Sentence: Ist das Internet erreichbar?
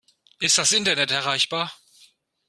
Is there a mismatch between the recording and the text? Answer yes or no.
no